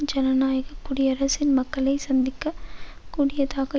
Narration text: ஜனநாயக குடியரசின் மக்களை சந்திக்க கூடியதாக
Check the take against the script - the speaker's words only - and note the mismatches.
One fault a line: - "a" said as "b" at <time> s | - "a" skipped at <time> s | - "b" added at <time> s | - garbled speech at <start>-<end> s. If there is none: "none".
none